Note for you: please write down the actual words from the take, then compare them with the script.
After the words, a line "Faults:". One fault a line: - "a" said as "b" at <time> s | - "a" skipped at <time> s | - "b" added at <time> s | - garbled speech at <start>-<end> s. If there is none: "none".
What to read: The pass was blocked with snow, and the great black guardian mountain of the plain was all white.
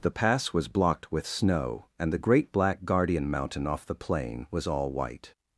The pass was blocked with snow, and the great black guardian mountain off the plain was all white.
Faults:
- "of" said as "off" at 3.7 s